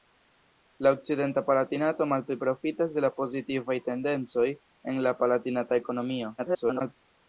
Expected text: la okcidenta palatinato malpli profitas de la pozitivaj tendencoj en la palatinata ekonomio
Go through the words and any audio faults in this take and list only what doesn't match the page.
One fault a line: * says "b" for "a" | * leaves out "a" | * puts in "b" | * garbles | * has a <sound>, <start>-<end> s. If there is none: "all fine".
* garbles